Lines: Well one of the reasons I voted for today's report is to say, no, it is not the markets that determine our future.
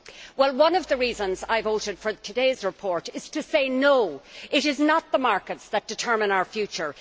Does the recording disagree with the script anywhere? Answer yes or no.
no